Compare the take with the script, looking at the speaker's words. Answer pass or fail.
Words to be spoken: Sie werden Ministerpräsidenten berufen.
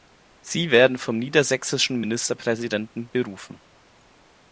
fail